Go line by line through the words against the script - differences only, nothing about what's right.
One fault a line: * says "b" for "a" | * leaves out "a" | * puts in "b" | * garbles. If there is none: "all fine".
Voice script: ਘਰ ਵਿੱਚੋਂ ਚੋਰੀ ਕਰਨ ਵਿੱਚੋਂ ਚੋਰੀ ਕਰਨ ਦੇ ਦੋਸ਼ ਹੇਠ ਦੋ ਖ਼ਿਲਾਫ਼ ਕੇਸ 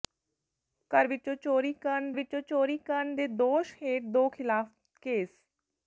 all fine